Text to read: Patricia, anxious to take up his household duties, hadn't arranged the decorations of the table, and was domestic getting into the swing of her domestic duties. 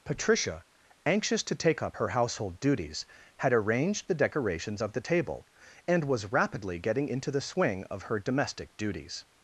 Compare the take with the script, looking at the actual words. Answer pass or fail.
fail